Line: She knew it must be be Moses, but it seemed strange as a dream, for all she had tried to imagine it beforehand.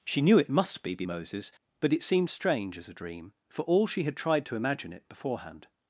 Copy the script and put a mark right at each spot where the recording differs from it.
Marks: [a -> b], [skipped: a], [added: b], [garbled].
She knew it must be be Moses, but it seemed strange as a dream, for all she had tried to imagine it beforehand.